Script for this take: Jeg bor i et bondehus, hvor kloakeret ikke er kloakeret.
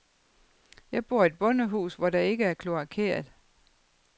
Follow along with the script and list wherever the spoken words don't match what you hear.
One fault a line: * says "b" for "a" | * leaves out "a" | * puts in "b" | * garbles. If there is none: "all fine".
* says "der" for "kloakeret"